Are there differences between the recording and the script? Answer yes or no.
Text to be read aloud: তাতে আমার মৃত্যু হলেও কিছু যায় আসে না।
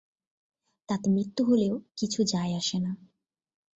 yes